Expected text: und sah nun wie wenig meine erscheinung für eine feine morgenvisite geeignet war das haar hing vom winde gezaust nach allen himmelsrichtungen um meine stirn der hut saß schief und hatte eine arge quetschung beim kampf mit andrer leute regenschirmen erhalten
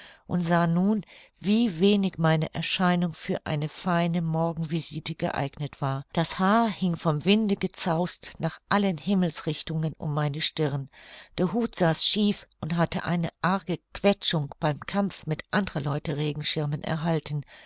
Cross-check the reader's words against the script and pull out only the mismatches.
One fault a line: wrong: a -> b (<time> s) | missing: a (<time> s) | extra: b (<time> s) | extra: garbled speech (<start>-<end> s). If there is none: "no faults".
no faults